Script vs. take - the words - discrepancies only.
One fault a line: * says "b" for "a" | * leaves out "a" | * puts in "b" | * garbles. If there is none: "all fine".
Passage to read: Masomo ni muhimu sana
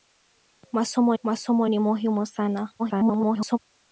* puts in "masomo"
* garbles